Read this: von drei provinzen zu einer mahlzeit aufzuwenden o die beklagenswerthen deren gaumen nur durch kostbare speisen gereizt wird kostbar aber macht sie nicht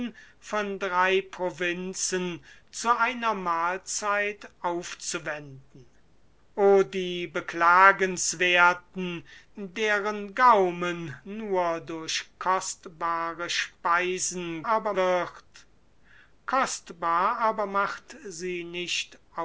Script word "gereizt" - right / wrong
wrong